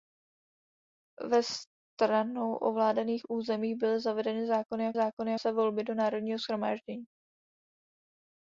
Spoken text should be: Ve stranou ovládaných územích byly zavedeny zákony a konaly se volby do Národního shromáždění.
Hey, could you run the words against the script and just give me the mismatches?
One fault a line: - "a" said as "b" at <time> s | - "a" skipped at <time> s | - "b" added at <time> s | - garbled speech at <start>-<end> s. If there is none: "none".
- "konaly" said as "zákony" at 4.9 s